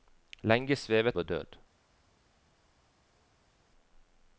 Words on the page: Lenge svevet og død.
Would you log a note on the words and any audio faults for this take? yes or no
no